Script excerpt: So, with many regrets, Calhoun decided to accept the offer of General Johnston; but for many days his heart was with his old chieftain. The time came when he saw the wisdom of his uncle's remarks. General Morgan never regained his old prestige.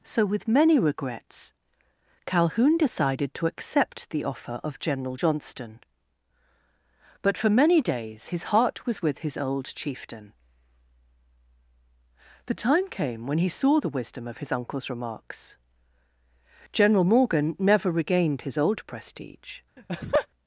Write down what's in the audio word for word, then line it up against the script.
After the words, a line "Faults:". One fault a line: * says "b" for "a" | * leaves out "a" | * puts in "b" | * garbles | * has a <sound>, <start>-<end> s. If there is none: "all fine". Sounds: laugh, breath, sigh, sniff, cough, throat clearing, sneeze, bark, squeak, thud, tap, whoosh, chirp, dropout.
So, with many regrets, Calhoun decided to accept the offer of General Johnston; but for many days his heart was with his old chieftain. The time came when he saw the wisdom of his uncle's remarks. General Morgan never regained his old prestige.
Faults:
* has a laugh, 19.8-20.3 s